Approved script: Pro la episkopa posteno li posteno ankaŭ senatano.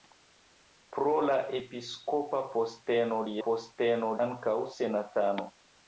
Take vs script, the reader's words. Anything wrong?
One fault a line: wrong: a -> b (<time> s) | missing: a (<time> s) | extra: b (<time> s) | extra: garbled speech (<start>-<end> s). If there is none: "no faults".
no faults